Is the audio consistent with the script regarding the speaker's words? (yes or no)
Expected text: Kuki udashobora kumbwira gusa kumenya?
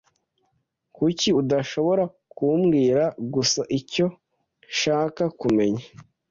no